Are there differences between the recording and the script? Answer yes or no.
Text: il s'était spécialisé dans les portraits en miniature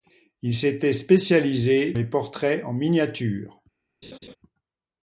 yes